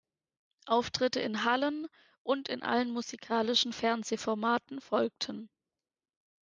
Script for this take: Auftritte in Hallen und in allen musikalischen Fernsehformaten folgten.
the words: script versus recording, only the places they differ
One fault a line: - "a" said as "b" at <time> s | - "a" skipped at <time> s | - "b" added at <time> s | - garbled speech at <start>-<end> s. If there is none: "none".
none